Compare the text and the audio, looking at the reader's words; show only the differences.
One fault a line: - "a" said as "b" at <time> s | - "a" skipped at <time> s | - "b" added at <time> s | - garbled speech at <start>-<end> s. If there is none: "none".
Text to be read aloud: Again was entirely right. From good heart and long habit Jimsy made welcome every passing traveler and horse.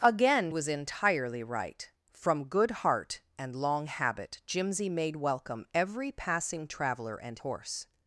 none